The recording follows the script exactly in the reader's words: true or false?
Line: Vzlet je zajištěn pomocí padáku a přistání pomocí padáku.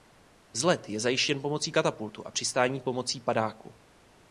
false